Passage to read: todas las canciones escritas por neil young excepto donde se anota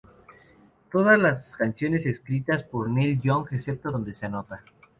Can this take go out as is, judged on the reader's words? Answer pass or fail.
pass